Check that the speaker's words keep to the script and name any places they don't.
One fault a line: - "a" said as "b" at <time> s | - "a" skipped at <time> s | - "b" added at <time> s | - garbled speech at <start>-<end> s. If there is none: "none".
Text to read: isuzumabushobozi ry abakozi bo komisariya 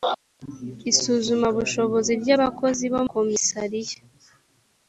none